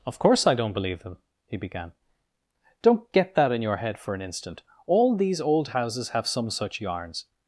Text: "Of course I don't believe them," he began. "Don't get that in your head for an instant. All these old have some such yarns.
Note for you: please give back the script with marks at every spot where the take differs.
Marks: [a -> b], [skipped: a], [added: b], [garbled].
"Of course I don't believe them," he began. "Don't get that in your head for an instant. All these old [added: houses] have some such yarns.